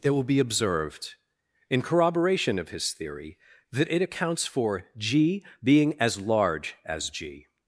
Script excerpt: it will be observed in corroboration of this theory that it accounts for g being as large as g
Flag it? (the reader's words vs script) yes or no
yes